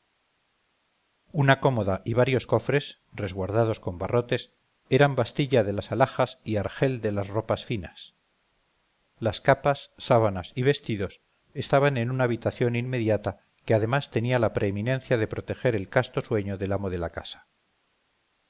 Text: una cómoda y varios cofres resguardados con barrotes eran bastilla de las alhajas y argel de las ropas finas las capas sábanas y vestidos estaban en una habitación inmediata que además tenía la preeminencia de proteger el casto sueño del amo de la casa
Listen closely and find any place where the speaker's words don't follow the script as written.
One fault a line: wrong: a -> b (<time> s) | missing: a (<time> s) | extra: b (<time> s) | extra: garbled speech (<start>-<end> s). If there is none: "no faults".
no faults